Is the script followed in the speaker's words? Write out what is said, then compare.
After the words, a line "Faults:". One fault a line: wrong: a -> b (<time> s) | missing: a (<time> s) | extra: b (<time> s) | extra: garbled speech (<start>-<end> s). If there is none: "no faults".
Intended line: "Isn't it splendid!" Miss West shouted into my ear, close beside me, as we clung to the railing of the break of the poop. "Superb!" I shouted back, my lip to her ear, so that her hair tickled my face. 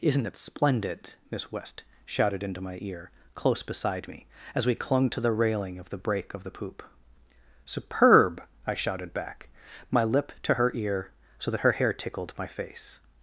"Isn't it splendid!" Miss West shouted into my ear, close beside me, as we clung to the railing of the break of the poop. "Superb!" I shouted back, my lip to her ear, so that her hair tickled my face.
Faults:
no faults